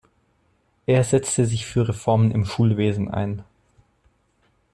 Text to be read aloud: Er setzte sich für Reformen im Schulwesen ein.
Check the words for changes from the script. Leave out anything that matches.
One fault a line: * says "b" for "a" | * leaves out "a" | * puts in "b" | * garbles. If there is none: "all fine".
all fine